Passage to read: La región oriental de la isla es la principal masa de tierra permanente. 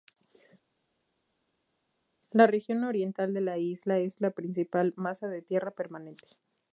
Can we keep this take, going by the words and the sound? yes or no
yes